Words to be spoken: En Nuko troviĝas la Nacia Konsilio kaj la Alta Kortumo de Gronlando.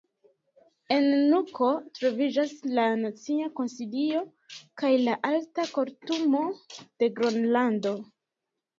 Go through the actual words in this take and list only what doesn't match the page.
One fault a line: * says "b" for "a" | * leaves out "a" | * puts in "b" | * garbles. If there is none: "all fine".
all fine